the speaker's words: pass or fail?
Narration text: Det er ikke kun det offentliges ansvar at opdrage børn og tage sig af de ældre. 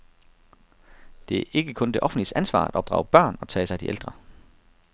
pass